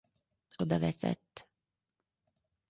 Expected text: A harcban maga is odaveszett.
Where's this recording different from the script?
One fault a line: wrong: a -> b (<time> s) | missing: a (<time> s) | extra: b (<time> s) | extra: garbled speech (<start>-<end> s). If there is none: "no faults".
missing: harcban maga is (0.6 s)